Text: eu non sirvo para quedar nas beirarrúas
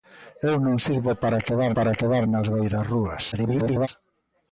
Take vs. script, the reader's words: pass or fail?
fail